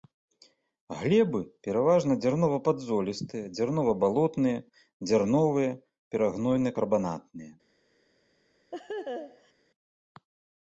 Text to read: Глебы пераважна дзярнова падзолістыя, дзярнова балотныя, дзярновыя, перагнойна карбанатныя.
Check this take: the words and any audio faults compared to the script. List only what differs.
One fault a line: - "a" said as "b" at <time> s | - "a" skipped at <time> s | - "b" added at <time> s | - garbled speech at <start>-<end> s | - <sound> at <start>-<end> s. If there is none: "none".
- laugh at 8.7-9.5 s